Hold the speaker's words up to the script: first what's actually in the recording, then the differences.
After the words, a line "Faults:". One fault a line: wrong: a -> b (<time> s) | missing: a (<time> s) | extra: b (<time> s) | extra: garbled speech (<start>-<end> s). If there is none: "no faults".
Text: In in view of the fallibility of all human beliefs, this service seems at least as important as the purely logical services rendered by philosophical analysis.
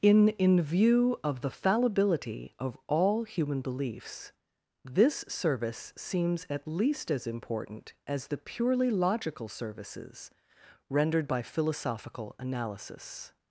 In in view of the fallibility of all human beliefs, this service seems at least as important as the purely logical services rendered by philosophical analysis.
Faults:
no faults